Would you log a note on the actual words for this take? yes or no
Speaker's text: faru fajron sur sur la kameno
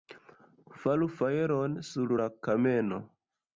yes